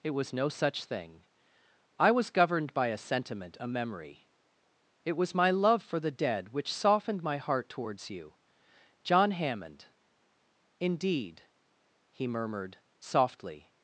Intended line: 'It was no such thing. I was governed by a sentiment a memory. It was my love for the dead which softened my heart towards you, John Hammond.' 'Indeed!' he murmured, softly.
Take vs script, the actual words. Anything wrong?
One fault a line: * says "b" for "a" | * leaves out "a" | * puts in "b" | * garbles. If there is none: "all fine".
all fine